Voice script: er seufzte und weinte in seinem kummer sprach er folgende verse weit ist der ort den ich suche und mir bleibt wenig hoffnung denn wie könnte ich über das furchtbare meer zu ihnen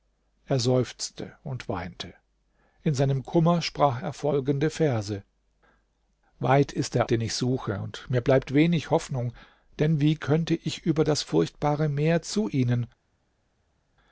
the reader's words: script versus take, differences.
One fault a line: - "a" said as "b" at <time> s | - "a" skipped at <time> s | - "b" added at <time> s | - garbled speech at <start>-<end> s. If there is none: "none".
- "ort" skipped at 7.1 s